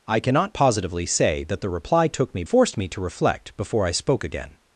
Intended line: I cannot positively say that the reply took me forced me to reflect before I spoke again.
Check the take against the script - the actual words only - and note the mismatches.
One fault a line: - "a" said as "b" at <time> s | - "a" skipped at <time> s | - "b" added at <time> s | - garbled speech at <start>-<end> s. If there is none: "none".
none